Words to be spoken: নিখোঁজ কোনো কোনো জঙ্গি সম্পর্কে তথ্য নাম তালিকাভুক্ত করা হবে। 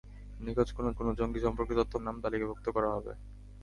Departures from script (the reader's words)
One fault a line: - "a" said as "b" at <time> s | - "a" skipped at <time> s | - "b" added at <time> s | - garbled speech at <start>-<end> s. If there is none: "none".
none